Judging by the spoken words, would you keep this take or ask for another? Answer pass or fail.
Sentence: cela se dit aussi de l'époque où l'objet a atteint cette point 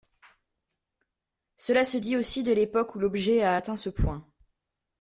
fail